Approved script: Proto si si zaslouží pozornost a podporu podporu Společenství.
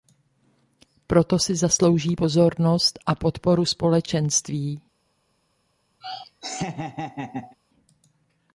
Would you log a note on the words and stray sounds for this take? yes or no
yes